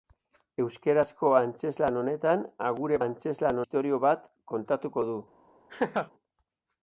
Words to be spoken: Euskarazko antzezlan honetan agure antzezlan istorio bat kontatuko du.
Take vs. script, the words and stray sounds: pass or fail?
fail